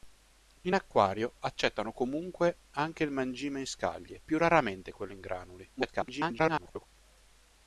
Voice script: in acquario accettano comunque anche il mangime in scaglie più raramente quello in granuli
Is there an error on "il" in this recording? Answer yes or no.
no